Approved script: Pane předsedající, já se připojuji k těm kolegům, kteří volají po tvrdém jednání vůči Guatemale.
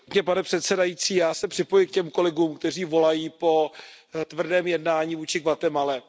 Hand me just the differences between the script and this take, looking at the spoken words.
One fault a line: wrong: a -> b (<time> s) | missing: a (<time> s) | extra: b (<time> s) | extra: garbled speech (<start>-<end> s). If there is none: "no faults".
no faults